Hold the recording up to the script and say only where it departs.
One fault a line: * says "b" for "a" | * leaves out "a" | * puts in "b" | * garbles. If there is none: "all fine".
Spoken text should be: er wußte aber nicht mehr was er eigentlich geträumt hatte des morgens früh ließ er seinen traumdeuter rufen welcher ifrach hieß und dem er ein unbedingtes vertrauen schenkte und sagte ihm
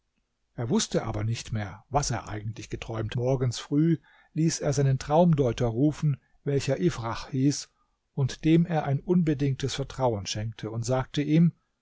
* leaves out "hatte des"